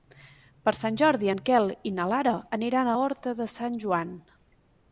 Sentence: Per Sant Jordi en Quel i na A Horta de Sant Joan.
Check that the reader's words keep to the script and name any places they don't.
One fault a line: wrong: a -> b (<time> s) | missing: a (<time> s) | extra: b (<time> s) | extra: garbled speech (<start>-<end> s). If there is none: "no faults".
extra: Lara aniran (2.1 s)